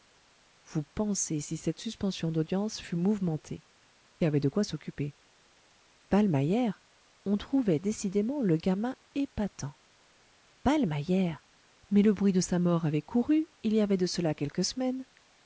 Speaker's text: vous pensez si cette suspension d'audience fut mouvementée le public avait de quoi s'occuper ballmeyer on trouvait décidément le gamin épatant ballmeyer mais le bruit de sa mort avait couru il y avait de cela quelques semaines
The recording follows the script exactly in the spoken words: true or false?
false